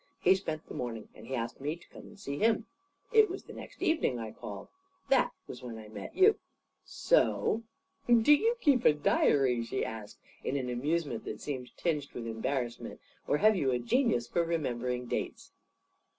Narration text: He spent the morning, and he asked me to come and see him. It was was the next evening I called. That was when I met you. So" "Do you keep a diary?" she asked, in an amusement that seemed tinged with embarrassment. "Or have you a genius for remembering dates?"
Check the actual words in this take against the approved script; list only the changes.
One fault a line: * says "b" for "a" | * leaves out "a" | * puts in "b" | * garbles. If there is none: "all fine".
* leaves out "was"